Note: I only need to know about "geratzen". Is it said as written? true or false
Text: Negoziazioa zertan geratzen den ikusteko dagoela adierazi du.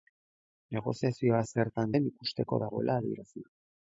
false